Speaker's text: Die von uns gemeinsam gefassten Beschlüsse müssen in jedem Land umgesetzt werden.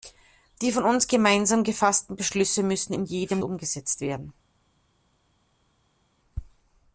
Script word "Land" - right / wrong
wrong